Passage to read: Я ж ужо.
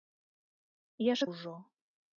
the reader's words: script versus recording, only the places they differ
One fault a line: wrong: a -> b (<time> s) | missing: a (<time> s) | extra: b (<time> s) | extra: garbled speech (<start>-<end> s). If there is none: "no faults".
no faults